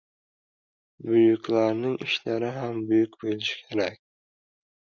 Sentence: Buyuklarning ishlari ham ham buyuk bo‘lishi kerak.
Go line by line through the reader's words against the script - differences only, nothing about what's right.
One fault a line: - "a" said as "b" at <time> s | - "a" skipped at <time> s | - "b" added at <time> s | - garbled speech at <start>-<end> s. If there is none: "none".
- "ham" skipped at 2.8 s